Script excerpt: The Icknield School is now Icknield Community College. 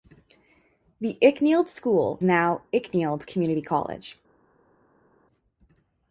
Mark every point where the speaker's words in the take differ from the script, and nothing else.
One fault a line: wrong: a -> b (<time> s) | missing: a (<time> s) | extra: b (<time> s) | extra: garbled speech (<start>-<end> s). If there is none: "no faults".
missing: is (2.2 s)